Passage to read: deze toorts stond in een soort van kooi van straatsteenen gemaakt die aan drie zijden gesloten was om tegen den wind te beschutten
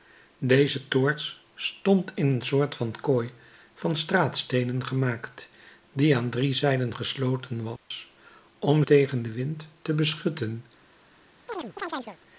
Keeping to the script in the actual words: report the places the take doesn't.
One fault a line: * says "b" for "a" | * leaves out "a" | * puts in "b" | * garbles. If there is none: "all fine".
all fine